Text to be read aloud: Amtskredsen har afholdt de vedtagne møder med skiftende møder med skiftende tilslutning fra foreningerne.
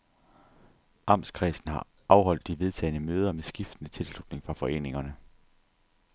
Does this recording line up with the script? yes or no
no